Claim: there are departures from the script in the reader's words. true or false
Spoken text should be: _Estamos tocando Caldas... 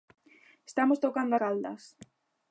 false